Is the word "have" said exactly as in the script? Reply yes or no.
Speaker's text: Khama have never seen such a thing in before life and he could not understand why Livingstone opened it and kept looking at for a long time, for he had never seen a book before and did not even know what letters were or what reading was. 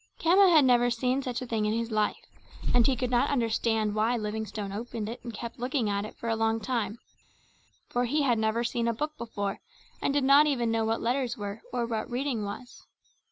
no